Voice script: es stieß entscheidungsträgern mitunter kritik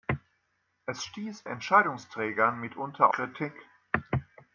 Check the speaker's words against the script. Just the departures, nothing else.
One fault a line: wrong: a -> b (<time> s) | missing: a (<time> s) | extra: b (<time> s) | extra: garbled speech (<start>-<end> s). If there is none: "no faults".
no faults